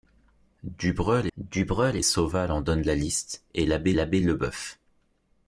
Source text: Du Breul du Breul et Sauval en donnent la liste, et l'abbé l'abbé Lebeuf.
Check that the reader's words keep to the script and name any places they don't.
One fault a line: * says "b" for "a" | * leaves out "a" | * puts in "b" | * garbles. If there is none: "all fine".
all fine